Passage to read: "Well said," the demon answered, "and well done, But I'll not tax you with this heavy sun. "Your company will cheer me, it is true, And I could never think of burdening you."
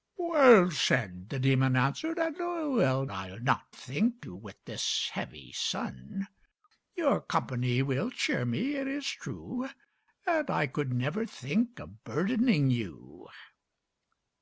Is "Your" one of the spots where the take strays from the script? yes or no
no